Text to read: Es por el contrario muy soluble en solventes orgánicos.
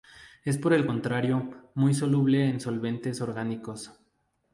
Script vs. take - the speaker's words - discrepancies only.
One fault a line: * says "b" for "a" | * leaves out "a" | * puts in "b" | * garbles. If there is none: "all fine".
all fine